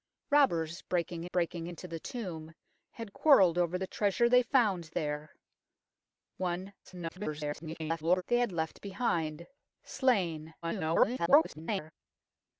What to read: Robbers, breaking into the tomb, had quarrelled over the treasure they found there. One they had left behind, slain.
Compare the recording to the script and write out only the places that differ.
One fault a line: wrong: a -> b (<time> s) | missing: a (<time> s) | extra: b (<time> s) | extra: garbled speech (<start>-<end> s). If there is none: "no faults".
extra: breaking (1.2 s)
extra: garbled speech (6.8-8.2 s)
extra: garbled speech (10.6-11.9 s)